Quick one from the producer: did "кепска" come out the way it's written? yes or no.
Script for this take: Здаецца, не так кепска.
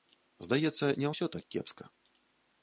yes